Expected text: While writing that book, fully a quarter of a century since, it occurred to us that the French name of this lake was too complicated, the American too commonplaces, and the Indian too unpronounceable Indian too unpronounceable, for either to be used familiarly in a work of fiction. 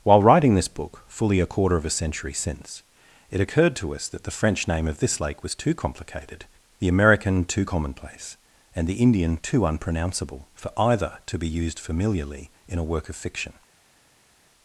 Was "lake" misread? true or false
false